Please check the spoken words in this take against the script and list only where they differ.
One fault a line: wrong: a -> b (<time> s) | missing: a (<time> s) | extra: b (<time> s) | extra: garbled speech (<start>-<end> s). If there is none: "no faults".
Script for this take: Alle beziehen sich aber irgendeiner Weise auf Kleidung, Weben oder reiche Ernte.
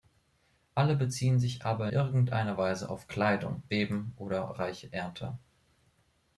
no faults